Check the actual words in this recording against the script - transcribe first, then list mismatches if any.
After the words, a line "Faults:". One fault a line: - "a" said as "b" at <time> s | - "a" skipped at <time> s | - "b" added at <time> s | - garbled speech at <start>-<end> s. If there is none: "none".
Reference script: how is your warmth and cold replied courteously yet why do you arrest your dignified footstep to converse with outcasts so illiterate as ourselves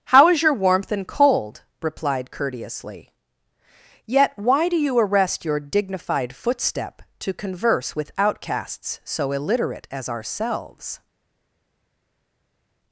how is your warmth and cold replied courteously yet why do you arrest your dignified footstep to converse with outcasts so illiterate as ourselves
Faults:
none